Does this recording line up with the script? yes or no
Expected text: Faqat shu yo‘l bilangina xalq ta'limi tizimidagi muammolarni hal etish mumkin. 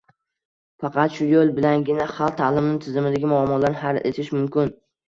yes